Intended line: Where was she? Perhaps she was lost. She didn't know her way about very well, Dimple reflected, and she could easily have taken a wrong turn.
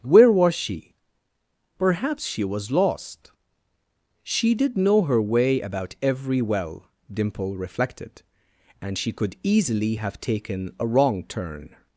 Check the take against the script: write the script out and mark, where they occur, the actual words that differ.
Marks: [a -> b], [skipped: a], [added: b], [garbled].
Where was she? Perhaps she was lost. She [didn't -> did] know her way about [very -> every] well, Dimple reflected, and she could easily have taken a wrong turn.